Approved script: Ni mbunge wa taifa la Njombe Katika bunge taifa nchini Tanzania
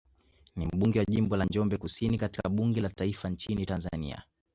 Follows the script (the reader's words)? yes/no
no